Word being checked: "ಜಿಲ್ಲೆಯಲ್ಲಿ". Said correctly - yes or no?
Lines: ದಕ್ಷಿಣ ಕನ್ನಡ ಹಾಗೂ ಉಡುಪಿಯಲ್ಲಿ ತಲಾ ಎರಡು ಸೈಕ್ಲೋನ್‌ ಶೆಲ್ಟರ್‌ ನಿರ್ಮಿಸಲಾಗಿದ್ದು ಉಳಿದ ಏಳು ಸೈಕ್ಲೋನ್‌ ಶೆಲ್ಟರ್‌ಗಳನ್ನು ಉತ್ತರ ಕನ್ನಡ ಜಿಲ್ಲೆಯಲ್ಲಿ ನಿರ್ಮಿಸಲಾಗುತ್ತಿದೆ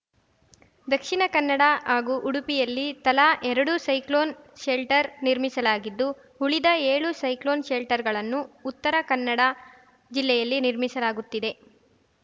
yes